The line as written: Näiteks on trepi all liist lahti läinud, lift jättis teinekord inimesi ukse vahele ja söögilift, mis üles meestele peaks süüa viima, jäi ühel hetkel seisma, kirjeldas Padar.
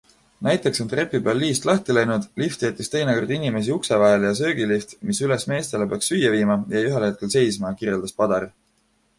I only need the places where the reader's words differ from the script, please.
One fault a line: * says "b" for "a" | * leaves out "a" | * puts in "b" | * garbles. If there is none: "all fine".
* says "peal" for "all"